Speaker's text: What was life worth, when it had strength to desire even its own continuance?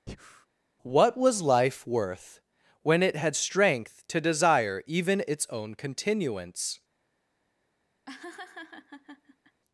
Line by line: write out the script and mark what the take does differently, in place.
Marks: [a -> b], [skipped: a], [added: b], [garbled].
What was life worth, when it had strength to desire even its own continuance?